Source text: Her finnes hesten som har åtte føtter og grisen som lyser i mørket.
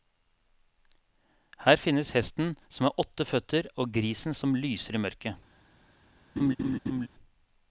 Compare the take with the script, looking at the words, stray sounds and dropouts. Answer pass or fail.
fail